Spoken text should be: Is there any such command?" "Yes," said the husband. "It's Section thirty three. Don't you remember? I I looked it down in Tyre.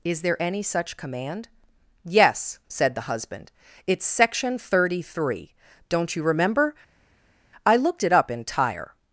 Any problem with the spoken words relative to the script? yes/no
yes